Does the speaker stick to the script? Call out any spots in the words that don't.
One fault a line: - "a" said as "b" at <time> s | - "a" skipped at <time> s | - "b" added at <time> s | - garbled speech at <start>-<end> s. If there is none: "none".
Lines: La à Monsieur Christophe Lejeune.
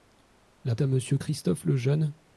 none